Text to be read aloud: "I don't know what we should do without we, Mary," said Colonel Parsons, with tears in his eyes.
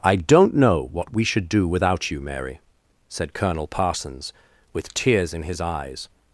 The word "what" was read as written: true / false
true